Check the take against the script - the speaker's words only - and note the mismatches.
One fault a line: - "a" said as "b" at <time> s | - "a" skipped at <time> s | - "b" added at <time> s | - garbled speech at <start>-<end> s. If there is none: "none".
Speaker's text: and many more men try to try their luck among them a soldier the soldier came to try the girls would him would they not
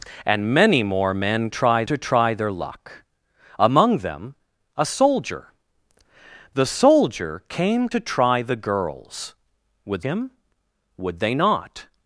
none